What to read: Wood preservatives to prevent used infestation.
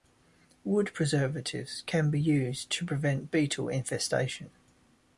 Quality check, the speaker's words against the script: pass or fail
fail